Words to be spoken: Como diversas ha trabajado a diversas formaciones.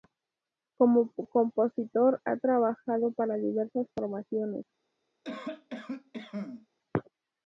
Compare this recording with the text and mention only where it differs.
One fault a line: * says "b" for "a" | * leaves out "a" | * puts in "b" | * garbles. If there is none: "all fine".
* says "compositor" for "diversas"
* says "para" for "a"